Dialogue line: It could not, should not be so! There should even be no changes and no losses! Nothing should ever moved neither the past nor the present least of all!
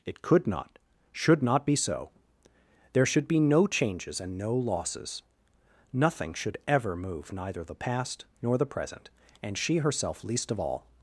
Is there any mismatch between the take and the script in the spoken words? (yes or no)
yes